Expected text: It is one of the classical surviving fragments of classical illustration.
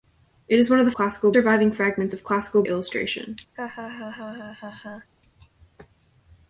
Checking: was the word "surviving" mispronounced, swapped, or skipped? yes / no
no